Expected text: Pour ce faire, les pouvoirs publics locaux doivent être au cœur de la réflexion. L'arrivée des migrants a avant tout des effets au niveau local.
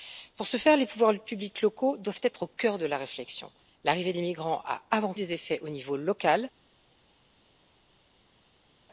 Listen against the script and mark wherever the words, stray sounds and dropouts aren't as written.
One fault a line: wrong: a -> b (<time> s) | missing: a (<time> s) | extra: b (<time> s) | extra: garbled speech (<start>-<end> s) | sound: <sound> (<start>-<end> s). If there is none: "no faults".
missing: tout (5.1 s)